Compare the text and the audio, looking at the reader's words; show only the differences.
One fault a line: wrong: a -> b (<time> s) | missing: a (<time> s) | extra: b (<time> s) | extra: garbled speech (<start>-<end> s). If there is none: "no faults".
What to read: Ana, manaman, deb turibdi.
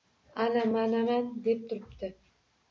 no faults